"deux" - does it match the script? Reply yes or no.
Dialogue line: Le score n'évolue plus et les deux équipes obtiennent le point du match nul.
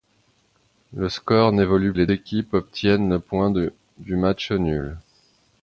no